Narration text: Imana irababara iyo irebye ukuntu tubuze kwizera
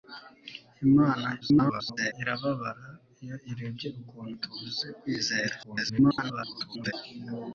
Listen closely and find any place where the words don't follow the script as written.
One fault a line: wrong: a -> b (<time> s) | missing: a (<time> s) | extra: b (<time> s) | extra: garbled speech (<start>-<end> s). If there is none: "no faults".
extra: garbled speech (1.4-2.1 s)
extra: garbled speech (5.6-6.9 s)